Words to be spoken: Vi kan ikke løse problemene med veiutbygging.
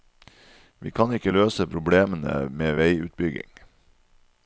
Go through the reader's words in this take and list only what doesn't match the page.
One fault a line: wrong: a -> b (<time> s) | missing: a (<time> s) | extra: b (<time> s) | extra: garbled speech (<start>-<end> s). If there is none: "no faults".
no faults